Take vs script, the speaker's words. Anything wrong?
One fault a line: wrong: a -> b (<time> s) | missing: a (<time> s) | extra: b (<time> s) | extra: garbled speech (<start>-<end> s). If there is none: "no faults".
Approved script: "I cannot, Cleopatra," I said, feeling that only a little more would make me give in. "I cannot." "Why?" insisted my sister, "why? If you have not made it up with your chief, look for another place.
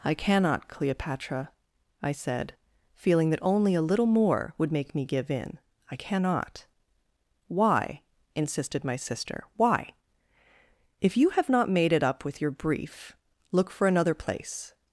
wrong: chief -> brief (12.5 s)